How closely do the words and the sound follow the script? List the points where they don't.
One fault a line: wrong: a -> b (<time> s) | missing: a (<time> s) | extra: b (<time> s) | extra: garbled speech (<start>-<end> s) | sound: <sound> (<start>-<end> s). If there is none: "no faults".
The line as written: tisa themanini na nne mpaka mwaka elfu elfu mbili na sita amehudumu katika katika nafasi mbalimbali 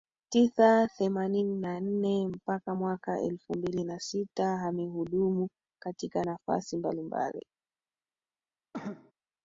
missing: elfu (3.5 s)
missing: katika (6.2 s)
sound: cough (8.7-9.1 s)